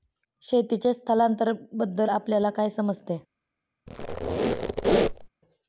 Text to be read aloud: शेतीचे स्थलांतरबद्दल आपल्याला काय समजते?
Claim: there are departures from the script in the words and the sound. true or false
true